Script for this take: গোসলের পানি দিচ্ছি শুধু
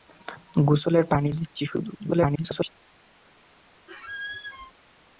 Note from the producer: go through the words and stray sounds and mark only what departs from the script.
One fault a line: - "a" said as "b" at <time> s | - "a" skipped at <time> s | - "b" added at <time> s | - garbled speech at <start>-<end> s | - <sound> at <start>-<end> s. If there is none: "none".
- garbled speech at 2.0-2.7 s
- squeak at 3.9-4.7 s